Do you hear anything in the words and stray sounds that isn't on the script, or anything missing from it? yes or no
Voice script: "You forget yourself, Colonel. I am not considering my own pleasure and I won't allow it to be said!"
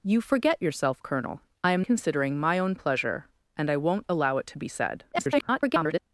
yes